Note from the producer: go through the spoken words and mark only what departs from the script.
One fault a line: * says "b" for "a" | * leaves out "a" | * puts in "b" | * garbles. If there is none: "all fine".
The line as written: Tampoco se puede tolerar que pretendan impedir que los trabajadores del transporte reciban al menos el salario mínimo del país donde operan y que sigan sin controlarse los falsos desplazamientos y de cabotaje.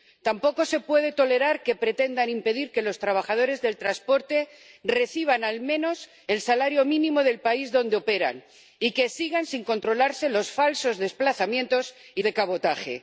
all fine